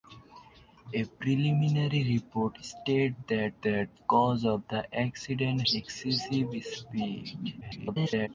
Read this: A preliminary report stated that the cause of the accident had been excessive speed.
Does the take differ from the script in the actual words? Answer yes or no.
yes